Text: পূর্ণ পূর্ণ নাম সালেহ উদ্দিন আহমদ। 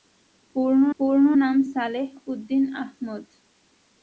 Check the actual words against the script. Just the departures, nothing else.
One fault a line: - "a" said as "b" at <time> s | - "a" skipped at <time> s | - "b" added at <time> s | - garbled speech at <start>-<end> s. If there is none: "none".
none